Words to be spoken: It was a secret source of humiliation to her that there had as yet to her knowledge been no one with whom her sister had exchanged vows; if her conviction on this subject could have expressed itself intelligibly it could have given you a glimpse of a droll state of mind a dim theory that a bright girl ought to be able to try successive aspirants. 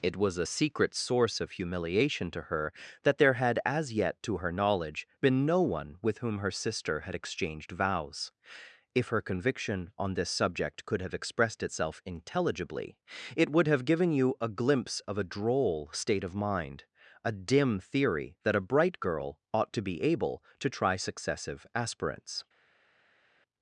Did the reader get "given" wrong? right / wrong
right